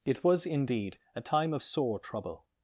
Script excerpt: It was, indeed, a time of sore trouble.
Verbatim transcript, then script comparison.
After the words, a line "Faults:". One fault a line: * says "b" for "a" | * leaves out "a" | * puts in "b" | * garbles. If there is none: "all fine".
It was, indeed, a time of sore trouble.
Faults:
all fine